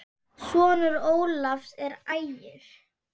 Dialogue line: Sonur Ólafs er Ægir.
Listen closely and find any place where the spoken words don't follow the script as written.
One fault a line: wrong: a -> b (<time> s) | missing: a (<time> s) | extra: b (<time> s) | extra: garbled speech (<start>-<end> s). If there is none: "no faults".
no faults